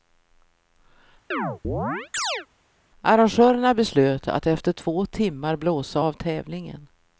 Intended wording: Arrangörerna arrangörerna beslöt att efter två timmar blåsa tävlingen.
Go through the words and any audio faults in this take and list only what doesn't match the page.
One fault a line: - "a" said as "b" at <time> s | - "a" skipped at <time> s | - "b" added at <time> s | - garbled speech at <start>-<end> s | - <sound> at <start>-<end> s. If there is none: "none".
- chirp at 1.3-2.5 s
- "arrangörerna" skipped at 3.7 s
- "av" added at 6.0 s